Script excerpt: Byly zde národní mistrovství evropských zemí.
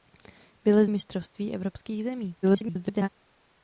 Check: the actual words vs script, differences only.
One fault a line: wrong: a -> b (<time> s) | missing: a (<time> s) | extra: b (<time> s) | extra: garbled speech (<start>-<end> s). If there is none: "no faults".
missing: zde národní (0.8 s)
extra: garbled speech (2.4-3.1 s)